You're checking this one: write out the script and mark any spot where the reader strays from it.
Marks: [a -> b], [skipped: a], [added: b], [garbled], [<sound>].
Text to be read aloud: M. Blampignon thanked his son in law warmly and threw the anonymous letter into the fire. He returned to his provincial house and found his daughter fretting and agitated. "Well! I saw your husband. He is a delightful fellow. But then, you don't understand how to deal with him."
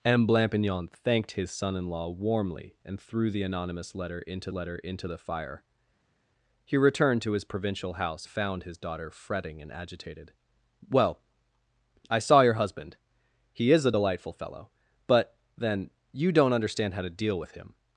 M. Blampignon thanked his son in law warmly and threw the anonymous letter into [added: letter into] the fire. He returned to his provincial house [skipped: and] found his daughter fretting and agitated. "Well! I saw your husband. He is a delightful fellow. But then, you don't understand how to deal with him."